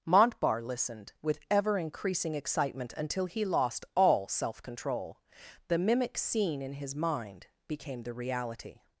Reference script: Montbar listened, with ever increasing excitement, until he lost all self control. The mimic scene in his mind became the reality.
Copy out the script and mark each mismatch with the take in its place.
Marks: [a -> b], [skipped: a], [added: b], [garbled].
Montbar listened, with ever increasing excitement, until he lost all self control. The mimic scene in his mind became the reality.